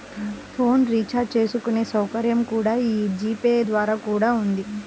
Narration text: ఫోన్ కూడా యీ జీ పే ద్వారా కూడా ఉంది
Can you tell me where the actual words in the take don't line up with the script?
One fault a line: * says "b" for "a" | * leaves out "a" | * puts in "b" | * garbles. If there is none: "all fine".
* puts in "రీచార్జ్ చేసుకునే సౌకర్యం"